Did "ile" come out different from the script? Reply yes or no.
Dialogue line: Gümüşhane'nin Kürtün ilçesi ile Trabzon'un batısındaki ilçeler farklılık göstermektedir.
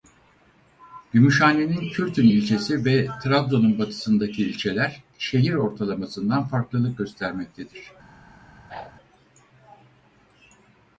yes